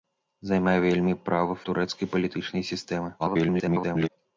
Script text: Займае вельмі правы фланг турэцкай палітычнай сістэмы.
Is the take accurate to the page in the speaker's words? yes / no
no